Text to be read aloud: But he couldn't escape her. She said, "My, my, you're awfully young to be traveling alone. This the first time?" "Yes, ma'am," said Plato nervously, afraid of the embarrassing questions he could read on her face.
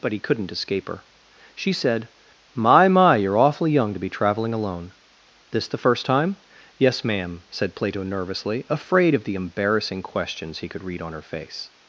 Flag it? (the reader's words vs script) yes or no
no